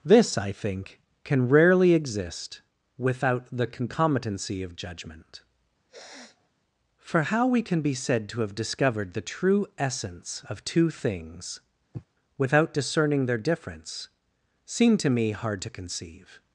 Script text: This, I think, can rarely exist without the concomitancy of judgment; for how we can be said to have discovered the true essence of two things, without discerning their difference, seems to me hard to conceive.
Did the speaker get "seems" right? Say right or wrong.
wrong